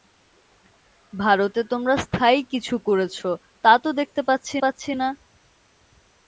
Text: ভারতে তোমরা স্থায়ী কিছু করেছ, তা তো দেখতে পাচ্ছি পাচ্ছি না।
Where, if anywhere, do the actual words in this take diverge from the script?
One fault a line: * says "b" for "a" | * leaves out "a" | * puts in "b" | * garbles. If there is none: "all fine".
all fine